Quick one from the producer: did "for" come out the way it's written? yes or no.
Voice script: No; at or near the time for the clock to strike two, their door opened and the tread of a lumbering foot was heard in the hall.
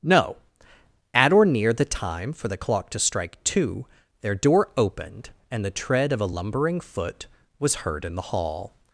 yes